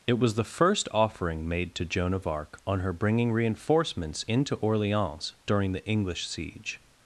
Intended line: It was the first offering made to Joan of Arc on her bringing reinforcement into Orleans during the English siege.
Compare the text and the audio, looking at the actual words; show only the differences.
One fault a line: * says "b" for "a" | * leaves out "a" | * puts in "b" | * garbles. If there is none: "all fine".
* says "reinforcements" for "reinforcement"